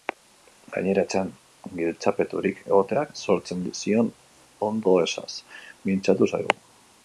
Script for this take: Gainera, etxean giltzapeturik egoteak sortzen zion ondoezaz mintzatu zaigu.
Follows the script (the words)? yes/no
yes